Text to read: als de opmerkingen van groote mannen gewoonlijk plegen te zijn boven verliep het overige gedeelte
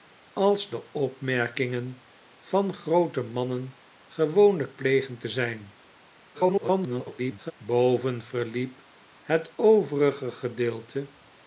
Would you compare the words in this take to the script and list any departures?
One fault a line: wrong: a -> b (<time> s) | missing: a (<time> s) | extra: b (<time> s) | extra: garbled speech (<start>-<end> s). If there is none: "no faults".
extra: garbled speech (6.3-7.5 s)